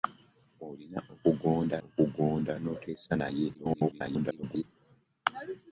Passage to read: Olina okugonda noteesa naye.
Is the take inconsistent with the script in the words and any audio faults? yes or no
yes